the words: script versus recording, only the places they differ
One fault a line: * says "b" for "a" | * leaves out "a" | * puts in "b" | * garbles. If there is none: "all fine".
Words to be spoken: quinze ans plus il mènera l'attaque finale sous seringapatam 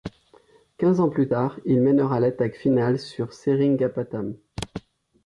* puts in "tard"
* says "sur" for "sous"